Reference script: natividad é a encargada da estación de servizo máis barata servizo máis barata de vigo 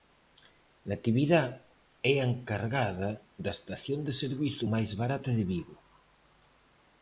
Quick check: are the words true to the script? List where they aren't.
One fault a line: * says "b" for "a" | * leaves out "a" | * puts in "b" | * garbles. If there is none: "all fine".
* leaves out "servizo máis barata"